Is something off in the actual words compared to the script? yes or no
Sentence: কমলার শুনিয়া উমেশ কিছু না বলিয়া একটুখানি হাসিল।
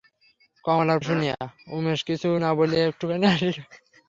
no